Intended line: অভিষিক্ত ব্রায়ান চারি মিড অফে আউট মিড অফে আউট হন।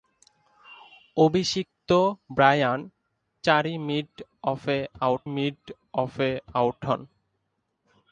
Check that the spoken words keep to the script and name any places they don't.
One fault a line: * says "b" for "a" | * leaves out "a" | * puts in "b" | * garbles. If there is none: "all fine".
all fine